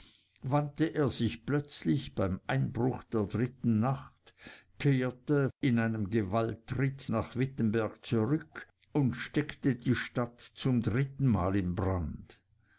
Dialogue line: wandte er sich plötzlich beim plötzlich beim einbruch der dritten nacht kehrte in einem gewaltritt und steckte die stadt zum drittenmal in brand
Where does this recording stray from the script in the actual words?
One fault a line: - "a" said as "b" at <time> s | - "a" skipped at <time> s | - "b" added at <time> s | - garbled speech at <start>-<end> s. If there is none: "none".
- "plötzlich beim" skipped at 2.4 s
- "nach wittenberg zurück" added at 7.1 s